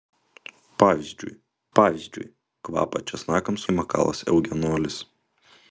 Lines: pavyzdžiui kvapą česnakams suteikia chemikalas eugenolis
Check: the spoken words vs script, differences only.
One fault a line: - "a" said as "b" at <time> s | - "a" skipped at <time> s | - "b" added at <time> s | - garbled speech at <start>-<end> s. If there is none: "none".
- "pavyzdžiui" added at 1.8 s
- "suteikia" skipped at 3.6 s